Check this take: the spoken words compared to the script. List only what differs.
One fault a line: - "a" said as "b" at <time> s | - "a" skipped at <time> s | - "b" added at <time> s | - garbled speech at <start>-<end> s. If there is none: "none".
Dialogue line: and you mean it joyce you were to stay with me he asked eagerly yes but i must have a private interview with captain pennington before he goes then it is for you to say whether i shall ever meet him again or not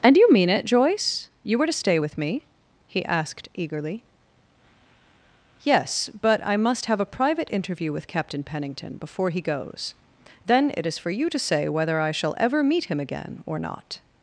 none